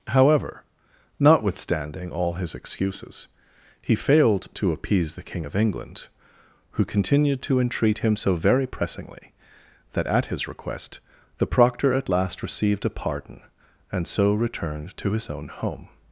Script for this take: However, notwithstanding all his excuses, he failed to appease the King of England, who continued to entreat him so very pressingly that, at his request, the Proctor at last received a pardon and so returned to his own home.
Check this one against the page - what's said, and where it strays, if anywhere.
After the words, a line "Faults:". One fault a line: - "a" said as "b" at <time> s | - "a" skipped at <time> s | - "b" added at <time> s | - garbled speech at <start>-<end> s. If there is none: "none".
However, notwithstanding all his excuses, he failed to appease the King of England, who continued to entreat him so very pressingly that, at his request, the Proctor at last received a pardon and so returned to his own home.
Faults:
none